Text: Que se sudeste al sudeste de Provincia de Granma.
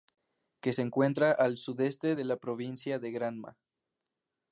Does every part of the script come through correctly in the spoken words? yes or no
no